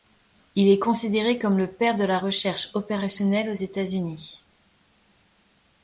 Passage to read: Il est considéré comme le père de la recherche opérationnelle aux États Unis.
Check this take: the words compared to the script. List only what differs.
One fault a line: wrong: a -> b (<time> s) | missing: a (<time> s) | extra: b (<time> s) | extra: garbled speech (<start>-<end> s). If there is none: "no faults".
no faults